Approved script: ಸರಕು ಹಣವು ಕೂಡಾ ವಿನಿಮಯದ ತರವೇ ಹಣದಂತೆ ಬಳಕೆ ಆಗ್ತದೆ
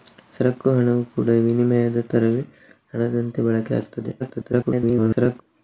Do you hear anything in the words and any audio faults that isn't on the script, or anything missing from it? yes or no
yes